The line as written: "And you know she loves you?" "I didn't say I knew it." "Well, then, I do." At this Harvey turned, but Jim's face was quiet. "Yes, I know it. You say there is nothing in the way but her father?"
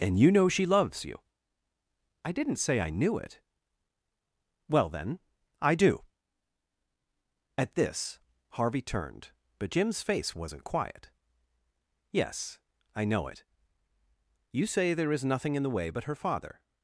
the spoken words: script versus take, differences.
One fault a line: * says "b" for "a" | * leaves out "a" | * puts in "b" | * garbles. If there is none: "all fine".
* says "wasn't" for "was"